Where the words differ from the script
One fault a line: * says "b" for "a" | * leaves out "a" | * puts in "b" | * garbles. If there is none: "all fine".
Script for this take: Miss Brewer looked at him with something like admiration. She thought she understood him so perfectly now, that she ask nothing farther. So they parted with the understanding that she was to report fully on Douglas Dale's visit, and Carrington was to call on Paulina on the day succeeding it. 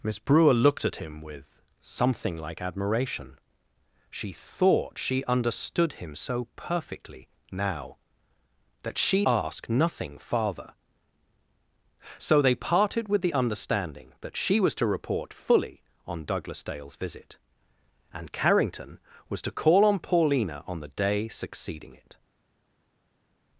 all fine